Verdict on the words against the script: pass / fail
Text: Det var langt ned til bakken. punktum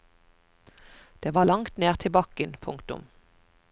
pass